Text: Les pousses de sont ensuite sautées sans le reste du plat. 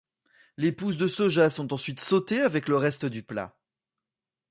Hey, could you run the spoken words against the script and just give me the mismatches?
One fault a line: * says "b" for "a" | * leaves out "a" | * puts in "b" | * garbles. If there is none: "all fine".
* puts in "soja"
* says "avec" for "sans"